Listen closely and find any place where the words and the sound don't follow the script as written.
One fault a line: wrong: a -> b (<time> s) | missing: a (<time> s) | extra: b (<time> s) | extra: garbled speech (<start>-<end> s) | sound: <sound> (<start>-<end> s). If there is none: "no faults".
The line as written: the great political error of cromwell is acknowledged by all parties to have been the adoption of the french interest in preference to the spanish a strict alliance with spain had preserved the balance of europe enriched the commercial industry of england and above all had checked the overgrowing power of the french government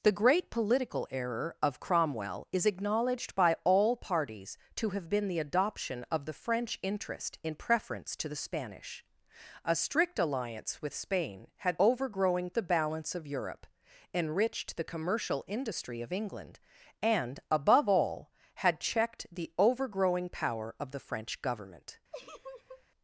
wrong: preserved -> overgrowing (11.8 s)
sound: laugh (22.1-22.8 s)